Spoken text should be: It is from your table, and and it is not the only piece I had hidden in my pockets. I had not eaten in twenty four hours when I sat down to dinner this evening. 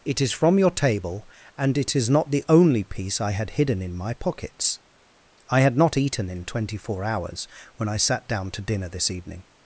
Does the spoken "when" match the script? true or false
true